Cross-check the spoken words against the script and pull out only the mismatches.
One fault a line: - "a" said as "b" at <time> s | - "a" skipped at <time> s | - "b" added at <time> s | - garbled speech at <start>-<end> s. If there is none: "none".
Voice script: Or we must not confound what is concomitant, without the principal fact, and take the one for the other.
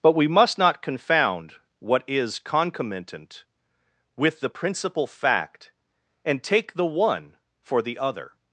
- "Or" said as "But" at 0.0 s
- "without" said as "with" at 4.2 s